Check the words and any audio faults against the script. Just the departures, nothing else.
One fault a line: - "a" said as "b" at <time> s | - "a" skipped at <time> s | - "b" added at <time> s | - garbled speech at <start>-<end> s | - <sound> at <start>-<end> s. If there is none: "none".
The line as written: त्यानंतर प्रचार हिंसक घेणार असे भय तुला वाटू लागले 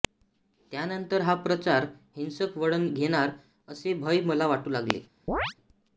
- "हा" added at 1.2 s
- "वळण" added at 2.6 s
- "तुला" said as "मला" at 4.2 s
- chirp at 5.3-5.5 s